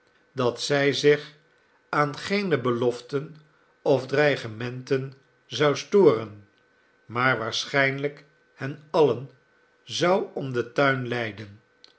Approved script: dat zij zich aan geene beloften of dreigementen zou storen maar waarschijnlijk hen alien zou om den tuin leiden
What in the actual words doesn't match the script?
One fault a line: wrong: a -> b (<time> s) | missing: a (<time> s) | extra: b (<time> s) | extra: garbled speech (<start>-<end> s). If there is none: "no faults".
no faults